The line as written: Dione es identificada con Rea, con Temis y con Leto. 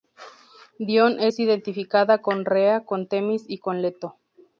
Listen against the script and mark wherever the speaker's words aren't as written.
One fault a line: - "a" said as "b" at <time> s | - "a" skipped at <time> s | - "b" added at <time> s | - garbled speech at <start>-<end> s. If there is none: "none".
none